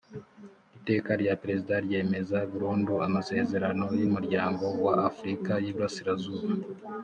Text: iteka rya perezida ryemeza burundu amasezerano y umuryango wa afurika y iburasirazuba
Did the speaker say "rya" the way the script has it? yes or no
yes